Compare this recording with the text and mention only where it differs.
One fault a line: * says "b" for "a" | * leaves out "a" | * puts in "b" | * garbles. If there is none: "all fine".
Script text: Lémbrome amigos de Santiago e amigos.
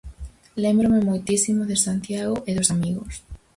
* says "moitísimo" for "amigos"
* puts in "dos"